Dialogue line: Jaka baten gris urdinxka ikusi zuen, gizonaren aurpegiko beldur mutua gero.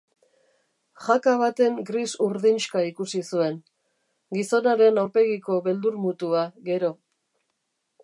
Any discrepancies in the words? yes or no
no